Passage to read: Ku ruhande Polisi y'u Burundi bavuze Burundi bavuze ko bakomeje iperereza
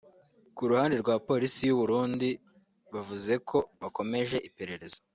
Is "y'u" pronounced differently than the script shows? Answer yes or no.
no